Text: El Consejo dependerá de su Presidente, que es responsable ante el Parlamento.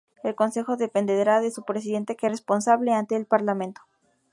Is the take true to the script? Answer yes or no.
yes